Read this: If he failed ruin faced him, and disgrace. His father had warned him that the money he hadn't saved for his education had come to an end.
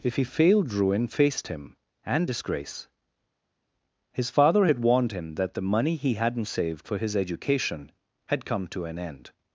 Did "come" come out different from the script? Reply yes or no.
no